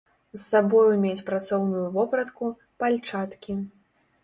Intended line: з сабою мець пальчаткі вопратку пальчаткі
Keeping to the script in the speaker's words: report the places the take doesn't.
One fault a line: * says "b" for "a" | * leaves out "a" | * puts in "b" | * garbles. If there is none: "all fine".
* says "працоўную" for "пальчаткі"